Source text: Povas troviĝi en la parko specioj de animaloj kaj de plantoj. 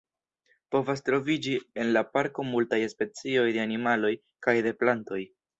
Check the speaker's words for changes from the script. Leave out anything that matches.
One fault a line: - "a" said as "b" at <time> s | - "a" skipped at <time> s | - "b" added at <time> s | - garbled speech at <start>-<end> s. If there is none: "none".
- "multaj" added at 2.5 s